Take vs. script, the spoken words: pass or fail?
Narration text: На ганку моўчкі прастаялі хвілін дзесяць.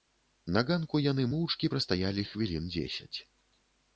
fail